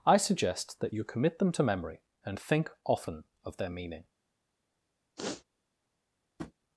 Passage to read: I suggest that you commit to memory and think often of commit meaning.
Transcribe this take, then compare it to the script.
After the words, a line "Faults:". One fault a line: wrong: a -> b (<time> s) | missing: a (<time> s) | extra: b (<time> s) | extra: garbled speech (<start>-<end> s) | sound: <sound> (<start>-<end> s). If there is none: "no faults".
I suggest that you commit them to memory and think often of their meaning.
Faults:
extra: them (1.4 s)
wrong: commit -> their (3.6 s)
sound: sniff (5.2-5.4 s)
sound: tap (6.4-6.5 s)